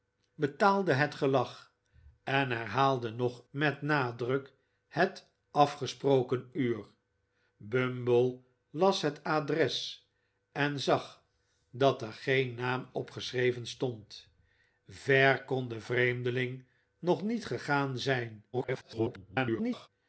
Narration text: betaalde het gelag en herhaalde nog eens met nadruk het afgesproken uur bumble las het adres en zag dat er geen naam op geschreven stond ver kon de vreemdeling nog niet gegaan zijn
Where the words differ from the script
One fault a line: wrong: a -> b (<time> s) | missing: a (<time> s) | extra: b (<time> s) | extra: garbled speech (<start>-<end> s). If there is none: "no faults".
missing: eens (3.4 s)
extra: garbled speech (18.5-19.9 s)